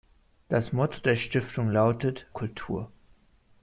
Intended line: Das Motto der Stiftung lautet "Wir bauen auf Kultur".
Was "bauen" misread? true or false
true